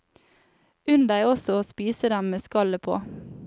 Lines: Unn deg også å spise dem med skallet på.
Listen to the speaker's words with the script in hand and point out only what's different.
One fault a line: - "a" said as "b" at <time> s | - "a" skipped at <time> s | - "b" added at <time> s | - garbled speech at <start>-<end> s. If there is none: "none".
none